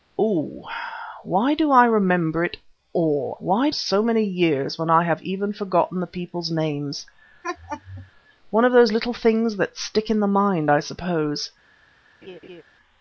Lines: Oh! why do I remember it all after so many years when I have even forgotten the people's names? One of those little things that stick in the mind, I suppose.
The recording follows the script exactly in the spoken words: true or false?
false